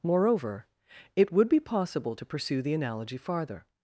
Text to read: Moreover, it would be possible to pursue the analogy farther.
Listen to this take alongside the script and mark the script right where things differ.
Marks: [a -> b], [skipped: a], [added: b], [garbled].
Moreover, it would be possible to pursue the analogy farther.